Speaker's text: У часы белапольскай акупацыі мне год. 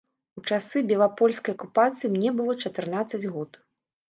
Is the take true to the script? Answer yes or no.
no